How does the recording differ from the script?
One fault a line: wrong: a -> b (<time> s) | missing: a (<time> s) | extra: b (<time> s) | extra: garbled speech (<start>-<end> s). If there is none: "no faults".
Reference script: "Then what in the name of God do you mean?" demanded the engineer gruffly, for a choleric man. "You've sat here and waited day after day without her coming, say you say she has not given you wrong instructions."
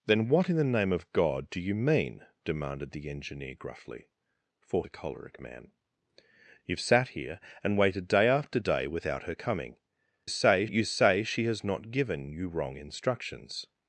no faults